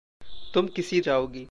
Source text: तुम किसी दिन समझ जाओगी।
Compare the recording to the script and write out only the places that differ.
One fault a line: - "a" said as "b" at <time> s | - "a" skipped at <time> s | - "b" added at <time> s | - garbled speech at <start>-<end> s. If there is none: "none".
- "दिन समझ" skipped at 1.0 s